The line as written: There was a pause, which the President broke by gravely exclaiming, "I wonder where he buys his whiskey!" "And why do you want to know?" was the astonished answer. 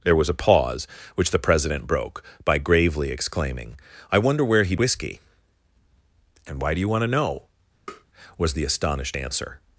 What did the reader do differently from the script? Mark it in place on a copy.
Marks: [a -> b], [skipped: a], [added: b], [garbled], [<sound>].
There was a pause, which the President broke by gravely exclaiming, "I wonder where he [skipped: buys his] whiskey!" "And why do you want to know?" [tap] was the astonished answer.